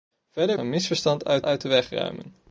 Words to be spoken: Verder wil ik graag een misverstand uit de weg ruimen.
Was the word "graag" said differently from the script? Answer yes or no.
yes